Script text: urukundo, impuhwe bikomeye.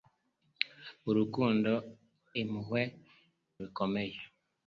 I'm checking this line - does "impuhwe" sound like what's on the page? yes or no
yes